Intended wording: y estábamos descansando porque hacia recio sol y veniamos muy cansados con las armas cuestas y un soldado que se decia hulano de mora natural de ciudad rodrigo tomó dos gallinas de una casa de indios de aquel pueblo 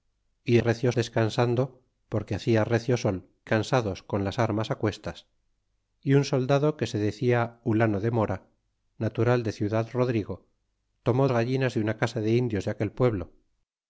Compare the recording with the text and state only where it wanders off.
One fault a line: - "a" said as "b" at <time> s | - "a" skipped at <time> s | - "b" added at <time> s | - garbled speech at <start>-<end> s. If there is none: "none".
- "estábamos" said as "recio" at 0.6 s
- "y veniamos muy" skipped at 3.3 s
- "dos" skipped at 11.3 s